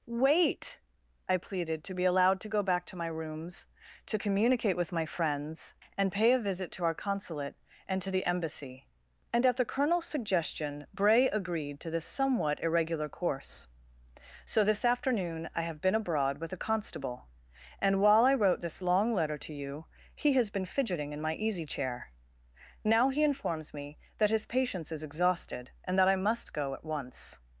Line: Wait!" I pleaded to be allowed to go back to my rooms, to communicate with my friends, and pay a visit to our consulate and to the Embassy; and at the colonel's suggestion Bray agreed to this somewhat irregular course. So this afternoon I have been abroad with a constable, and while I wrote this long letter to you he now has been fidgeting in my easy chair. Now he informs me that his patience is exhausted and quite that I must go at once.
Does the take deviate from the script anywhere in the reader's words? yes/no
yes